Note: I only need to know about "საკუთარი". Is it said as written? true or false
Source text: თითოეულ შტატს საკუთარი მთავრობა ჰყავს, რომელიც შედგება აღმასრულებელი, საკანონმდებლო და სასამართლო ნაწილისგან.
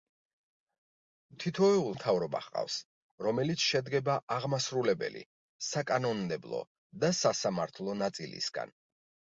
false